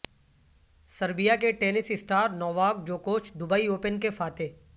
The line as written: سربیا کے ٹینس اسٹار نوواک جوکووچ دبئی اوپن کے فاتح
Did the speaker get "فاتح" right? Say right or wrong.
right